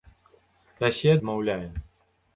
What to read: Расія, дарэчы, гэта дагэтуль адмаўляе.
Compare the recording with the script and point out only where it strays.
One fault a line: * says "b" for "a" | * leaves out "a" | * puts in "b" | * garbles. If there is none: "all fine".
* leaves out "дарэчы гэта дагэтуль"